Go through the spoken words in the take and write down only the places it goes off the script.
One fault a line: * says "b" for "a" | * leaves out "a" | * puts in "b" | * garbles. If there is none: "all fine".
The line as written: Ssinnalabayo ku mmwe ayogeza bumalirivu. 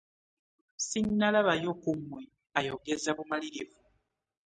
all fine